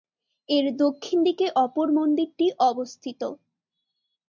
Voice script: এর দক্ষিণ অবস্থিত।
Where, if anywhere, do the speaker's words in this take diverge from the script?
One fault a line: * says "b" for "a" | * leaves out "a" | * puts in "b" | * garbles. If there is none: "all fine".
* puts in "দিকে অপর মন্দিরটি"